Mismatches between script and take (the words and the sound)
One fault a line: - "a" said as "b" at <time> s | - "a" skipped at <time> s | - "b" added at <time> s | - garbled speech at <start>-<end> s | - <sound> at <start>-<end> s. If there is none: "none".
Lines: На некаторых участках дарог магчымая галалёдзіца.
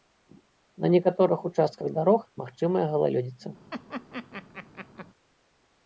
- laugh at 3.7-5.1 s